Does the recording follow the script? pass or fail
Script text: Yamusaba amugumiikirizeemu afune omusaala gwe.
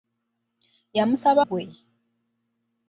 fail